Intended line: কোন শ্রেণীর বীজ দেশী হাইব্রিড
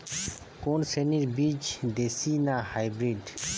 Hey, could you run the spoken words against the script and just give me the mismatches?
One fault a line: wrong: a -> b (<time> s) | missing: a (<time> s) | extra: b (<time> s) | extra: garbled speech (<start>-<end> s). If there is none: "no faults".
extra: না (2.4 s)